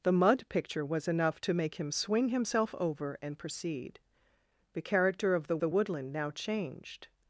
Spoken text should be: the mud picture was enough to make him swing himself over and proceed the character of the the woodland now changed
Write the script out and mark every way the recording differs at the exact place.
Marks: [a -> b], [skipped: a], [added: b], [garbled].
the mud picture was enough to make him swing himself over and proceed the character of the the woodland now changed